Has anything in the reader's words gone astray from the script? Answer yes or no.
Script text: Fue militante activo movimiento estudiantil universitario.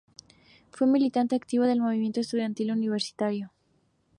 yes